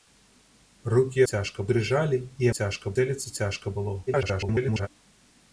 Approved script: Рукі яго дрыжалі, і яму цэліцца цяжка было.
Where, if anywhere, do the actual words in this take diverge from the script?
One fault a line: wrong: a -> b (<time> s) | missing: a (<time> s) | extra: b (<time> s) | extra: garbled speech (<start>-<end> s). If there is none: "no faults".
wrong: яго -> цяжка (1.3 s)
wrong: яму -> цяжка (2.6 s)
extra: garbled speech (4.1-4.9 s)